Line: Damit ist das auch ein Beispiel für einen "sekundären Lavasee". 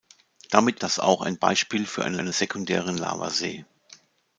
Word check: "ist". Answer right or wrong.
wrong